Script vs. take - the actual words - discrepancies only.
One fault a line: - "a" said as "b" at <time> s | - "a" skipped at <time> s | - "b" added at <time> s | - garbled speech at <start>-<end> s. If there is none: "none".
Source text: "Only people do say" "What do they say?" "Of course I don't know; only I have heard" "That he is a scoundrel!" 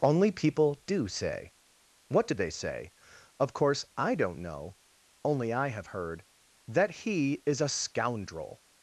none